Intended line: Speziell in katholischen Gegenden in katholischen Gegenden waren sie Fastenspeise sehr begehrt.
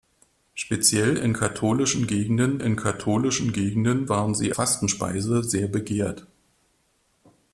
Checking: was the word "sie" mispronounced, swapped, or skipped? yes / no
no